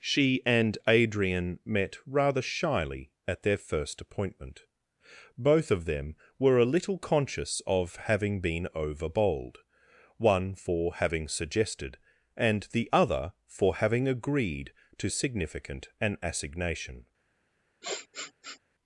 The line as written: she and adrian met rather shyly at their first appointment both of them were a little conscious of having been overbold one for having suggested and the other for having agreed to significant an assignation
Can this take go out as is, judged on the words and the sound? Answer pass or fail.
fail